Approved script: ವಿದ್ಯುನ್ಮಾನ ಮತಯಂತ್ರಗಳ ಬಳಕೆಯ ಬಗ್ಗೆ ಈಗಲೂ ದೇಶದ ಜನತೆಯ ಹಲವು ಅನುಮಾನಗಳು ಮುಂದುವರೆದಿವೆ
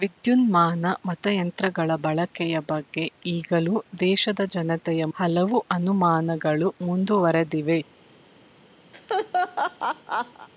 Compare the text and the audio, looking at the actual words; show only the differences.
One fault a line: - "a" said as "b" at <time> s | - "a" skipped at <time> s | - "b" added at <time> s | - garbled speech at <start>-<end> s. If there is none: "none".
none